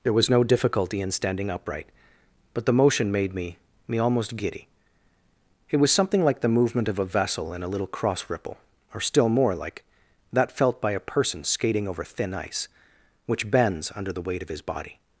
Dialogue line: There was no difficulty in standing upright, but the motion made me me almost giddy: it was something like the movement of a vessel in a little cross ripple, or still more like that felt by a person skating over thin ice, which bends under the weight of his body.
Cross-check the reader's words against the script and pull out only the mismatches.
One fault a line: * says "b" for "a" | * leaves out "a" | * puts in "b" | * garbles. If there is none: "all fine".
all fine